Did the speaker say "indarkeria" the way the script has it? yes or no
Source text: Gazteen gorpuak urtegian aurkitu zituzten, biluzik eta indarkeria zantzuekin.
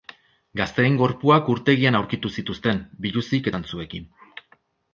no